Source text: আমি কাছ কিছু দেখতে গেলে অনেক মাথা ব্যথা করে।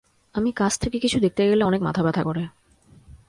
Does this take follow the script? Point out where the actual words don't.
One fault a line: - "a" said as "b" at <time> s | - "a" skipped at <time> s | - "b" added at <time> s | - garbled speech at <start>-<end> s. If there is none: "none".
- "থেকে" added at 0.8 s